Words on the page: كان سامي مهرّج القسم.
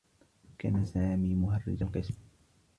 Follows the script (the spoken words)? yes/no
yes